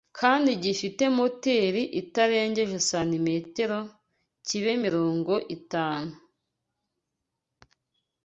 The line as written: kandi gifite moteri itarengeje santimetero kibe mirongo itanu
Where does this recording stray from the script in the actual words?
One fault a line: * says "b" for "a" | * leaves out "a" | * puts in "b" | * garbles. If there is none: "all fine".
all fine